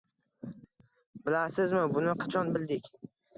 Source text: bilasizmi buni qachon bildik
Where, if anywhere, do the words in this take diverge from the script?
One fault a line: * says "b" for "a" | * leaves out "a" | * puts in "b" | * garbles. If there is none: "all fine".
all fine